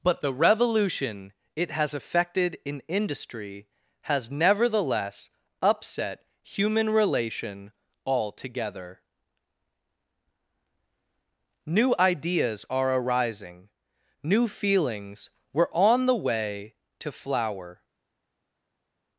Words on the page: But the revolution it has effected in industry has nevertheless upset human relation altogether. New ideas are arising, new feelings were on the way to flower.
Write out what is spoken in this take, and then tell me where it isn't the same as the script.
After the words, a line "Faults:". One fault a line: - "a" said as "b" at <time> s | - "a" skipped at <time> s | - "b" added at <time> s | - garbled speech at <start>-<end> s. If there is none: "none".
But the revolution it has effected in industry has nevertheless upset human relation altogether. New ideas are arising, new feelings were on the way to flower.
Faults:
none